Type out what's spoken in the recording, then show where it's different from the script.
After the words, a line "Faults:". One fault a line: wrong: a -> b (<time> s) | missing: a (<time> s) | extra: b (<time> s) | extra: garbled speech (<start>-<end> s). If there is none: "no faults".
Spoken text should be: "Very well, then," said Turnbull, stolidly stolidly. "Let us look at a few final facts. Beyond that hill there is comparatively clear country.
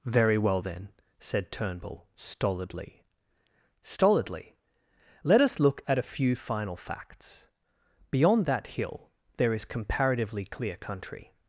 "Very well, then," said Turnbull, stolidly stolidly. "Let us look at a few final facts. Beyond that hill there is comparatively clear country.
Faults:
no faults